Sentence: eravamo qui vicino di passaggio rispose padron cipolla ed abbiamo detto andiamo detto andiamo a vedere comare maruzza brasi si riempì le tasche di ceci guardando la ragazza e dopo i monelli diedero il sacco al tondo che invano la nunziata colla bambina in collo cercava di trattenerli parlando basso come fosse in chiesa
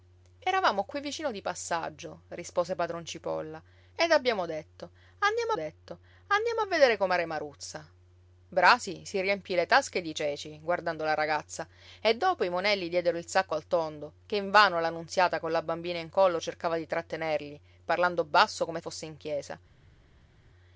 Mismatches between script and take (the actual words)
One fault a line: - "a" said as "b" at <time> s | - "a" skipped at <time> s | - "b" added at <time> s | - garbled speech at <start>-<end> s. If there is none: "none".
none